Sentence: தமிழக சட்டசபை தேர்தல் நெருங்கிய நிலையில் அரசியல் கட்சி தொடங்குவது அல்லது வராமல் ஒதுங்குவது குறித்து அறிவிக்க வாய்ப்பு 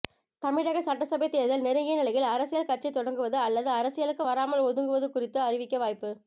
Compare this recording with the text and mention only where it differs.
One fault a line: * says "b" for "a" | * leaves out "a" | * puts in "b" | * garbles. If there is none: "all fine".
* puts in "அரசியலுக்கு"